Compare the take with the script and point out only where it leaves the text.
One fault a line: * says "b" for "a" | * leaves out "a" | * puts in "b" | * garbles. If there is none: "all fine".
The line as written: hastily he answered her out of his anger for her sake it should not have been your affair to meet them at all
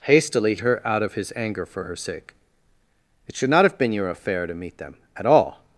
* leaves out "he answered"